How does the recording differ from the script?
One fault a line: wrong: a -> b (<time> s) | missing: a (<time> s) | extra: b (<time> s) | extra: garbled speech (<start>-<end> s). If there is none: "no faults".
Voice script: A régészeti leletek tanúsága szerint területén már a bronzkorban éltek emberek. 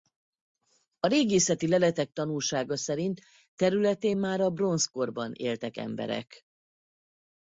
no faults